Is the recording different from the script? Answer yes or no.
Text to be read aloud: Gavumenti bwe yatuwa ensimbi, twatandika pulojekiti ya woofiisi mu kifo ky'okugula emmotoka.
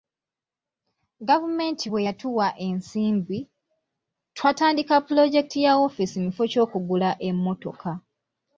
no